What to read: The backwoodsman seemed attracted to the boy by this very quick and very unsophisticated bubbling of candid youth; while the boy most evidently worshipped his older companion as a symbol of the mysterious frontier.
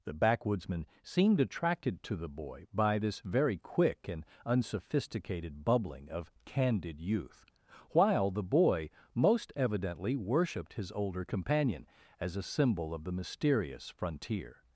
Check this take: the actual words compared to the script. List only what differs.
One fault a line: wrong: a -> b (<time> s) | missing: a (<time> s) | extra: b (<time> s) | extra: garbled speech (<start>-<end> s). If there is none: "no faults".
missing: very (4.2 s)